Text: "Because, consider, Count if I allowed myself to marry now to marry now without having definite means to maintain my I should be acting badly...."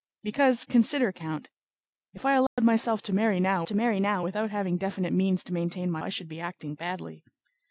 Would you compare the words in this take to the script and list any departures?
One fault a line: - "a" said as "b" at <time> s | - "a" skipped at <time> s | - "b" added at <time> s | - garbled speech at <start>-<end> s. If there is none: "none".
none